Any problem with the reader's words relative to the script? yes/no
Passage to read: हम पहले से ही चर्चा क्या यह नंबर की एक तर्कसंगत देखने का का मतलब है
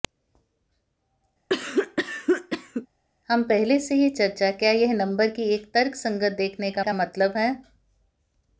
no